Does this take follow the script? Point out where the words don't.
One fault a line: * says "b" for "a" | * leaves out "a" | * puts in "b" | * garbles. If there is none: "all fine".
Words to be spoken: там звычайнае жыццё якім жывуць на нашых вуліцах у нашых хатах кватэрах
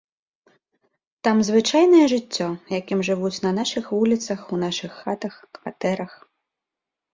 all fine